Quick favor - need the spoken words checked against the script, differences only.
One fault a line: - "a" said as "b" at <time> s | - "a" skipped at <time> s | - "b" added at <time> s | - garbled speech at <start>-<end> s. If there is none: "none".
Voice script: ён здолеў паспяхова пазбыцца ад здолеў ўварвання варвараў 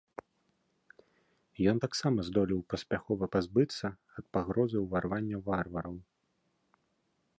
- "таксама" added at 1.8 s
- "здолеў" said as "пагрозы" at 4.4 s